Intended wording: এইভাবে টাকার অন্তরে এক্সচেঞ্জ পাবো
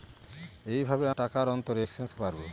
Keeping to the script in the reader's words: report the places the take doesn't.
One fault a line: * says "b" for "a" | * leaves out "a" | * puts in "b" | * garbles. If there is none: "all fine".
all fine